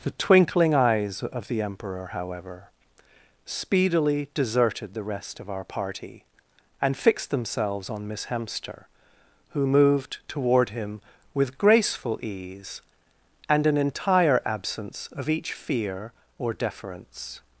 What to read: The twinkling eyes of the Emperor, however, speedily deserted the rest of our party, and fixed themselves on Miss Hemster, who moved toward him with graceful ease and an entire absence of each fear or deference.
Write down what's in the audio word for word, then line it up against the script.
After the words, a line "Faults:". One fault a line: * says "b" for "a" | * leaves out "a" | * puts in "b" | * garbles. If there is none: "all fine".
The twinkling eyes of the Emperor, however, speedily deserted the rest of our party, and fixed themselves on Miss Hemster, who moved toward him with graceful ease and an entire absence of each fear or deference.
Faults:
all fine